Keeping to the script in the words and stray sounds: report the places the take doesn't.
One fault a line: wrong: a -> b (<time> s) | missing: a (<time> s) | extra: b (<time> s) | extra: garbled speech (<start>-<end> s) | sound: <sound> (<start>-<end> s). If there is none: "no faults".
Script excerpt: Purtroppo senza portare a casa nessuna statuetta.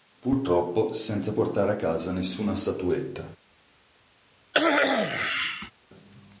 sound: cough (4.5-5.7 s)